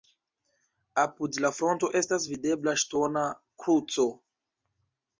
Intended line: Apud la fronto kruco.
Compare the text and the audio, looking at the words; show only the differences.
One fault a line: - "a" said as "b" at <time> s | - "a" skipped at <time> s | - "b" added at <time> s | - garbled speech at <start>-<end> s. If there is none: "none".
- "estas videbla ŝtona" added at 2.0 s